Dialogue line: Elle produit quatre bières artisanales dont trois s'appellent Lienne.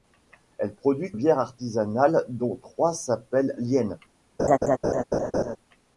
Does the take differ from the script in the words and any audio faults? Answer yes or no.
yes